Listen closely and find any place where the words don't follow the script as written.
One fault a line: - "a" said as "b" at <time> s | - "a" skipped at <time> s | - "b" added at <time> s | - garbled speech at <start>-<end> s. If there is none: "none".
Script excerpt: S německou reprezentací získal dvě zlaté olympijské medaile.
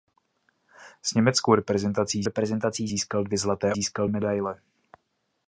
- "reprezentací" added at 2.2 s
- "olympijské" said as "získal" at 3.7 s